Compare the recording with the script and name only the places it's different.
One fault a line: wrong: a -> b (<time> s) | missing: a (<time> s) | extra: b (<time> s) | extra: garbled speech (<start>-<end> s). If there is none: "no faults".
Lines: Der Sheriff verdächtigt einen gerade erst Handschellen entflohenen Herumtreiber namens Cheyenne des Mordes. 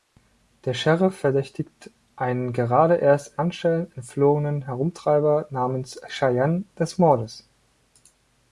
no faults